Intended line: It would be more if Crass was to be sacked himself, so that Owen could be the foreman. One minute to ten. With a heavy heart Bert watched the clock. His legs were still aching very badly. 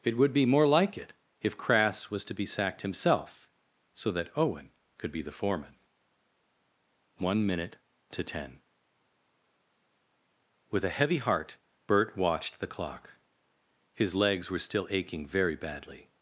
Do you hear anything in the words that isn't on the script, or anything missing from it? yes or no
yes